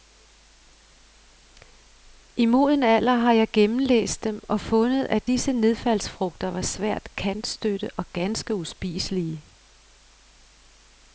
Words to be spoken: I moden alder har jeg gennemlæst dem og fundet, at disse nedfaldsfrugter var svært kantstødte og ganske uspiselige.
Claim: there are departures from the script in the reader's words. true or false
false